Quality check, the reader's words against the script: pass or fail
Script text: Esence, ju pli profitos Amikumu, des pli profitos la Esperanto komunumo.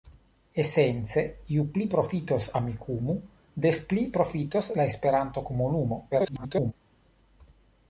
fail